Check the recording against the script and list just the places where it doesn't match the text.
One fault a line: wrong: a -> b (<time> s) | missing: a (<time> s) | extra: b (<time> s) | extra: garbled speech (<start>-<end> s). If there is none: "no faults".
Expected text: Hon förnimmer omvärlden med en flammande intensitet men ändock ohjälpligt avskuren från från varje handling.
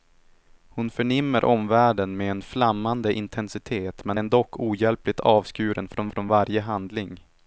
no faults